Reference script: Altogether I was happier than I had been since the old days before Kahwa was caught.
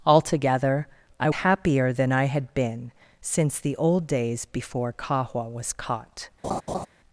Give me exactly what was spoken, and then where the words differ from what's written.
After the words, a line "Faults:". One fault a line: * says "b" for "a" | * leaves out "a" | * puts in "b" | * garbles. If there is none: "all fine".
Altogether I happier than I had been since the old days before Kahwa was caught.
Faults:
* leaves out "was"